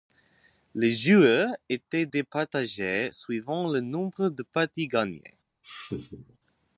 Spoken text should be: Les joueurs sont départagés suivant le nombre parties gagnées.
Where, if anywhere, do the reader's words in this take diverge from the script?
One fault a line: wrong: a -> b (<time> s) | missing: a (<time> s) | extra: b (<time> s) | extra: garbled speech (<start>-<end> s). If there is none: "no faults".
wrong: sont -> étaient (1.7 s)
extra: de (4.3 s)